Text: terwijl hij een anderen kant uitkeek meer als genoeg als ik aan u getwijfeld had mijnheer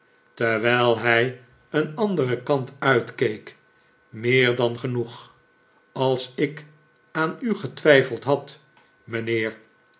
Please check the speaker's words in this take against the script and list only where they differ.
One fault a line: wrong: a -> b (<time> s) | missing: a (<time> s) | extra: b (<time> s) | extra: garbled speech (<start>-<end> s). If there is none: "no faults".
wrong: als -> dan (4.5 s)